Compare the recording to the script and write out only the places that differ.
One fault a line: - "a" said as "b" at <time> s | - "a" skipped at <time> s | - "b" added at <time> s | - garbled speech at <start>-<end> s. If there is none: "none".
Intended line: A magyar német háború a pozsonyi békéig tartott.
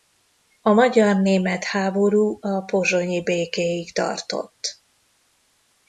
none